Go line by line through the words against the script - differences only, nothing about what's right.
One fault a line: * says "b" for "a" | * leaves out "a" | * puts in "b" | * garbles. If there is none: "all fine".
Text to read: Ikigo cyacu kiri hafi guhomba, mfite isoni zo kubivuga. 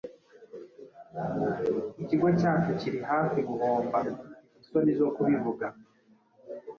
all fine